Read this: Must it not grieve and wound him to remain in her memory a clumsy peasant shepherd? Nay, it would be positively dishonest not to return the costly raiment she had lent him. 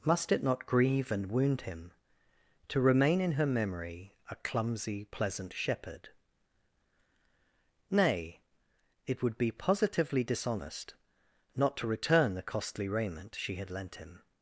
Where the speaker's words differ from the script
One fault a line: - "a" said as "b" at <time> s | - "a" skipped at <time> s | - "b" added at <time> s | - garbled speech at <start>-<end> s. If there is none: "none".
- "peasant" said as "pleasant" at 5.0 s